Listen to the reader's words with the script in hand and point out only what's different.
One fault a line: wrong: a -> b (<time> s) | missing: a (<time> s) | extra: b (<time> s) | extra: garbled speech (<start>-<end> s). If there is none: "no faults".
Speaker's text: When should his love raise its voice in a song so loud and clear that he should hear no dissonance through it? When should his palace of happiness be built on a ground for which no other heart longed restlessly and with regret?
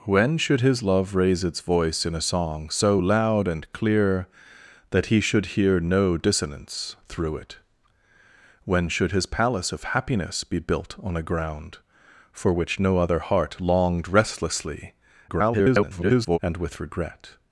extra: garbled speech (15.3-16.4 s)